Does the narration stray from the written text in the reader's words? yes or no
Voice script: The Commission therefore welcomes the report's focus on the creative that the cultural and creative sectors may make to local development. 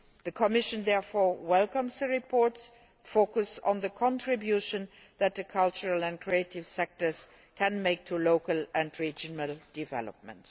yes